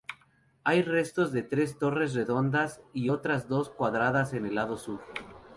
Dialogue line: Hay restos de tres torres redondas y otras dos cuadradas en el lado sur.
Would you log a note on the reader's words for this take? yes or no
no